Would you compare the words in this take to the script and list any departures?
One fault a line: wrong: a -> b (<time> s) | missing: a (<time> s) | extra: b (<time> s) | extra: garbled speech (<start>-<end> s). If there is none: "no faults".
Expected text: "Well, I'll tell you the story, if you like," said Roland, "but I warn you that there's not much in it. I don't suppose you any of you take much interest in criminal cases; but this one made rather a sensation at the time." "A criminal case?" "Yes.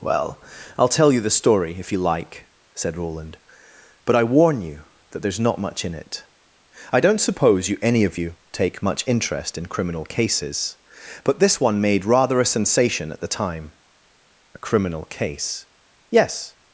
no faults